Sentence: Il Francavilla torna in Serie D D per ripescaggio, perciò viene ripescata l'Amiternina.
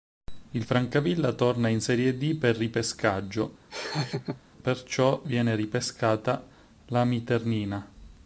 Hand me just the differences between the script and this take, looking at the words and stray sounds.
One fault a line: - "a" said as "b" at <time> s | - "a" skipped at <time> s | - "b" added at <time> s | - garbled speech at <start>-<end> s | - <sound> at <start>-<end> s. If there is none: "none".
- "D" skipped at 2.4 s
- laugh at 3.7-4.4 s